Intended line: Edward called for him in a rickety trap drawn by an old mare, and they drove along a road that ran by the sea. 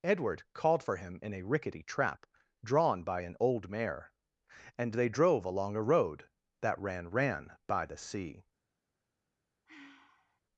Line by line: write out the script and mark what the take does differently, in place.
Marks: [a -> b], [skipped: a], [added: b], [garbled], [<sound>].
Edward called for him in a rickety trap drawn by an old mare, and they drove along a road that ran [added: ran] by the sea. [sigh]